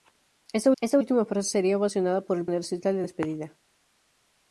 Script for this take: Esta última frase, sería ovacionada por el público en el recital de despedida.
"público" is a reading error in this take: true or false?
true